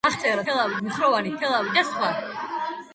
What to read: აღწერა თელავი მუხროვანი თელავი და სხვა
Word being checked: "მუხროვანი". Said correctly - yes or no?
yes